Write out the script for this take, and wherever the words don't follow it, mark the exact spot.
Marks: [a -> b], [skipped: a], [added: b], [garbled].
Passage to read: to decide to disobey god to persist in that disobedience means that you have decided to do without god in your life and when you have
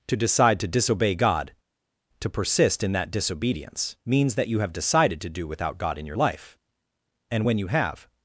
to decide to disobey god to persist in that disobedience means that you have decided to do without god in your life and when you have